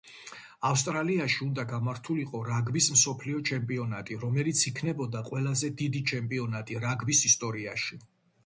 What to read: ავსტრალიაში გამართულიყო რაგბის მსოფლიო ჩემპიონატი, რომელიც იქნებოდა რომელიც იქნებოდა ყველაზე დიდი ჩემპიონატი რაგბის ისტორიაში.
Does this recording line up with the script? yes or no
no